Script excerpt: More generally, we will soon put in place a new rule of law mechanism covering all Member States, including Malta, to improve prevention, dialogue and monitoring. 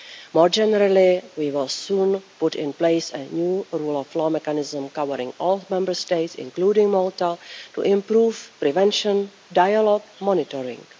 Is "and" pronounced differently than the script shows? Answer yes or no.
yes